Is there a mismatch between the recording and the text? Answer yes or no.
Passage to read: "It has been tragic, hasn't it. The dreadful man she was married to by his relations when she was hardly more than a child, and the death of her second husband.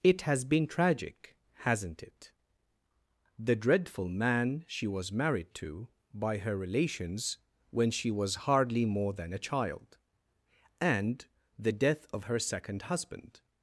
yes